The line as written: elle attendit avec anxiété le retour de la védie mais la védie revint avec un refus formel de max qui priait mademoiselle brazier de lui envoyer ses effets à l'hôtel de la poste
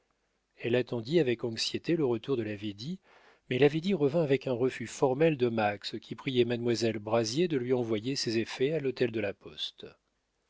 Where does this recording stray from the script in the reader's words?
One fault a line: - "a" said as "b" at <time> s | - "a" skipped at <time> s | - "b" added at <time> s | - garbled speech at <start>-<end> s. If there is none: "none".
none